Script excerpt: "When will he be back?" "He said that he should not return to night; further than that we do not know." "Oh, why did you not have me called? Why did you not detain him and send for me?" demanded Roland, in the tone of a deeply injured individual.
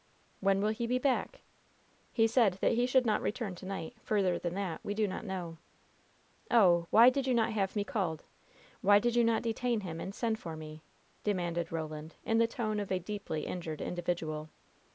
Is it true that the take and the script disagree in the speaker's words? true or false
false